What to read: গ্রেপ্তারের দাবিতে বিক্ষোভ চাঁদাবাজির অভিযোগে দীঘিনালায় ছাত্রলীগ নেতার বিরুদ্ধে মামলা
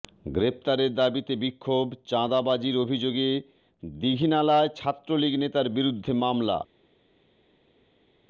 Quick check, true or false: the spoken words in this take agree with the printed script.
true